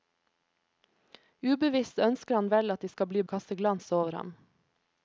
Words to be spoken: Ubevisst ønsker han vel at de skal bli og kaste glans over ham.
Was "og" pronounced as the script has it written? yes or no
yes